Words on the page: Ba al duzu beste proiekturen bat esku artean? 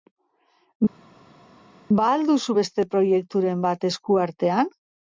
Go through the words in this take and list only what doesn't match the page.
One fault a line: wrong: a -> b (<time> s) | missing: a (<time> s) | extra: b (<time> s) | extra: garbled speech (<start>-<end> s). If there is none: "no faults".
no faults